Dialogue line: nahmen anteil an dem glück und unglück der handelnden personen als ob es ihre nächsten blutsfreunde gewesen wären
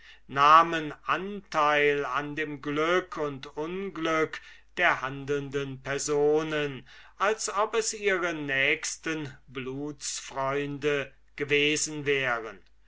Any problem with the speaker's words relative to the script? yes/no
no